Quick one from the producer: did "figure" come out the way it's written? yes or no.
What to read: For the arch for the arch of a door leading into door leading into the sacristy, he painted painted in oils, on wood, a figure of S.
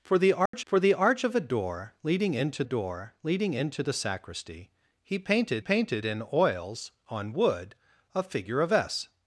yes